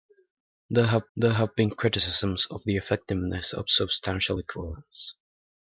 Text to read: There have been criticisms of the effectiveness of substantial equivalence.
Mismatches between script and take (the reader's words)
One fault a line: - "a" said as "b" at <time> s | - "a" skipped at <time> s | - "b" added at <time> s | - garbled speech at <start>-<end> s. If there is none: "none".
- "there have" added at 1.2 s